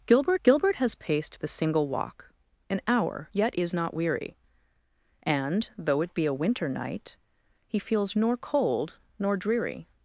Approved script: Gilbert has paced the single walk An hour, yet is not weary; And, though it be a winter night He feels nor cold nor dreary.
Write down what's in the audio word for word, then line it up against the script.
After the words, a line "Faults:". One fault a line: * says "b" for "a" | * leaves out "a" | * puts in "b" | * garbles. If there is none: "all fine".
Gilbert gilbert has paced the single walk An hour, yet is not weary; And, though it be a winter night He feels nor cold nor dreary.
Faults:
* puts in "gilbert"